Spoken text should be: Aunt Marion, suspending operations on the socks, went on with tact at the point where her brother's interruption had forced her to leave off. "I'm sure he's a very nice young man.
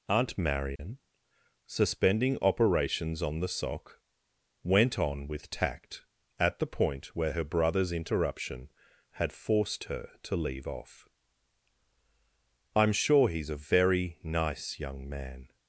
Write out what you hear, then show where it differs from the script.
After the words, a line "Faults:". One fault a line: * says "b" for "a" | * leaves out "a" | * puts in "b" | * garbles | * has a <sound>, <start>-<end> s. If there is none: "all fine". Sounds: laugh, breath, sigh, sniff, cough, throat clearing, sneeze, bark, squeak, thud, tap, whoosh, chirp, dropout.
Aunt Marion, suspending operations on the sock, went on with tact at the point where her brother's interruption had forced her to leave off. "I'm sure he's a very nice young man.
Faults:
* has a dropout, 0.8-0.8 s
* says "sock" for "socks"